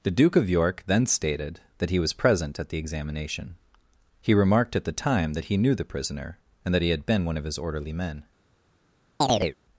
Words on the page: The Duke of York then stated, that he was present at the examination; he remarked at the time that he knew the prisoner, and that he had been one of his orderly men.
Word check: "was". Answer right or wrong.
right